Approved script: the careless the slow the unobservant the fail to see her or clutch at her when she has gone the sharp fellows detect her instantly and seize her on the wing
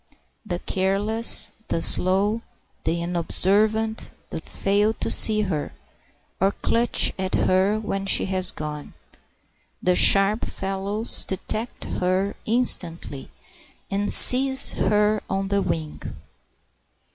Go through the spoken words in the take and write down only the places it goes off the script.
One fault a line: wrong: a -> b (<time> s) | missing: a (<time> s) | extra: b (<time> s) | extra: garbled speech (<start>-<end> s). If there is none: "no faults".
no faults